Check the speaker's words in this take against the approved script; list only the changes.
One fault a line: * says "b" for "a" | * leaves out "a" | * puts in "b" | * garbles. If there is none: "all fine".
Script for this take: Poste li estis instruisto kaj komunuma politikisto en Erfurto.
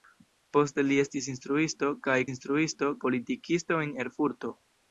* says "instruisto" for "komunuma"